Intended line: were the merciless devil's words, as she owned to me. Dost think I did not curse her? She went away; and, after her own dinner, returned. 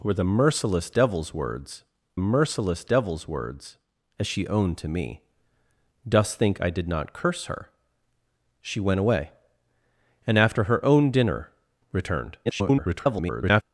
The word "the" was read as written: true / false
true